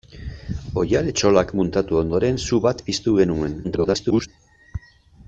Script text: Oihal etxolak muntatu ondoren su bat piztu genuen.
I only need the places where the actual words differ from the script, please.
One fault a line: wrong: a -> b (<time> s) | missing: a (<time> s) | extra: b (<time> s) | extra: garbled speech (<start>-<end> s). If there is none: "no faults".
extra: garbled speech (3.6-4.3 s)